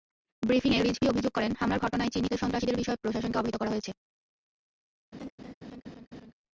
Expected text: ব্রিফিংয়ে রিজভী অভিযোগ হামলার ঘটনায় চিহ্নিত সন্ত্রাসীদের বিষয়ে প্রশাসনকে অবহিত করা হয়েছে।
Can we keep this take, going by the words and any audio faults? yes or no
no